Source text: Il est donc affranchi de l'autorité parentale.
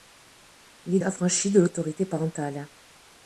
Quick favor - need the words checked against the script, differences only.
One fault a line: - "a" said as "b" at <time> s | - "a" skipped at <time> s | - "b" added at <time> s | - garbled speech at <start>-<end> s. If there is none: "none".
- "donc" skipped at 1.0 s